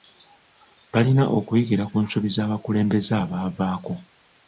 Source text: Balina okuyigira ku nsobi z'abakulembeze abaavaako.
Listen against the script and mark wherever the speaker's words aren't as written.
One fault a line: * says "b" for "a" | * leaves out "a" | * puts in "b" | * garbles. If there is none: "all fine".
all fine